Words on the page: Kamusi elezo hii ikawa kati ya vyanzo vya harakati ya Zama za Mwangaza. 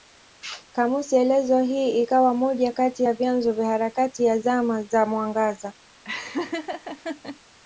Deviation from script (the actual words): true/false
true